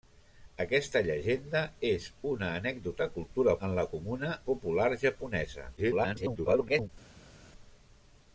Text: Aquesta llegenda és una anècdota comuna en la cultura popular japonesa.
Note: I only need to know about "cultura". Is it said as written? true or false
false